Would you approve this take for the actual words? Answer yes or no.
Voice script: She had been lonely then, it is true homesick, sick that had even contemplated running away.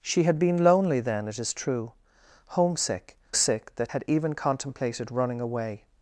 yes